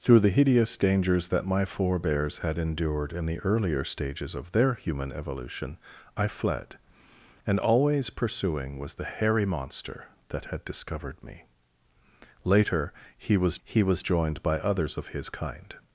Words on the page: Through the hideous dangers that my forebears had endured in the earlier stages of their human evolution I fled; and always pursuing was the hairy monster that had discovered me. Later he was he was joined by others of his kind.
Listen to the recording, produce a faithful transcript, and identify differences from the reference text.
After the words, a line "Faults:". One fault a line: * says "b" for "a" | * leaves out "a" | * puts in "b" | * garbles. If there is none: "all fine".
Through the hideous dangers that my forebears had endured in the earlier stages of their human evolution I fled; and always pursuing was the hairy monster that had discovered me. Later he was he was joined by others of his kind.
Faults:
all fine